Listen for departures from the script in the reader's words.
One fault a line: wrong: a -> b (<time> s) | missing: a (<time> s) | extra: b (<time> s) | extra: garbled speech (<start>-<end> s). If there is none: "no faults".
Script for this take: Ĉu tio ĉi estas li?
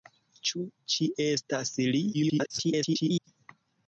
missing: tio (0.6 s)
extra: garbled speech (2.1-3.3 s)